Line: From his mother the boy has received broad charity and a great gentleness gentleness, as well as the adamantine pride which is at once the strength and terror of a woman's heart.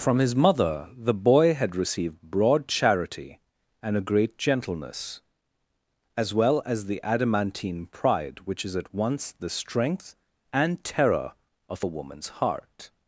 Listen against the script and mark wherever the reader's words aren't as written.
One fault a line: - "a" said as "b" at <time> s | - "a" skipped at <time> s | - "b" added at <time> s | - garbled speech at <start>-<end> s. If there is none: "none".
- "has" said as "had" at 1.5 s
- "gentleness" skipped at 5.2 s